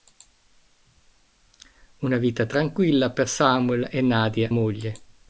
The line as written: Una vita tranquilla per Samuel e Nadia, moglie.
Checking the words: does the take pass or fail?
pass